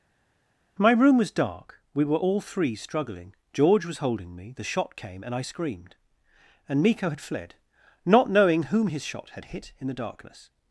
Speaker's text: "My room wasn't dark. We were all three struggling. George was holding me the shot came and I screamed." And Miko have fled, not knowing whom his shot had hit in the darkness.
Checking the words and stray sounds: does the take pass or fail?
fail